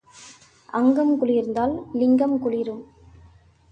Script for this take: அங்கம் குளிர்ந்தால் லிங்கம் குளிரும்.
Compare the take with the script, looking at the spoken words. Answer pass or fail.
pass